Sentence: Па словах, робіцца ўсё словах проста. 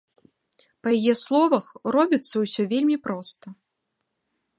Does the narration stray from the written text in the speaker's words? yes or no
yes